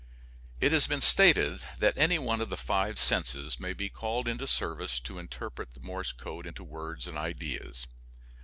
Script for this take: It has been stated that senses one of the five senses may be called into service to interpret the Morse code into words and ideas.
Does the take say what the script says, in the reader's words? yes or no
no